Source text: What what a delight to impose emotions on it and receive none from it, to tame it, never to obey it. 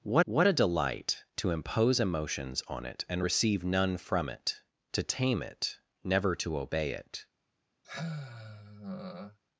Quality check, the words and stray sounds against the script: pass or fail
fail